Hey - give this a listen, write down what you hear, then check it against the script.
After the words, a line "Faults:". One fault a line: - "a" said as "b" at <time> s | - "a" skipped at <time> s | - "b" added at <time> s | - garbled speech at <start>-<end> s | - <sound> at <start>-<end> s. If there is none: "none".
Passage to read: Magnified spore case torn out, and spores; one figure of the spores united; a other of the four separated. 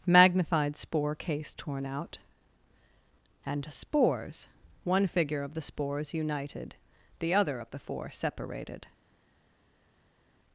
Magnified spore case torn out, and spores; one figure of the spores united; the other of the four separated.
Faults:
- "a" said as "the" at 7.2 s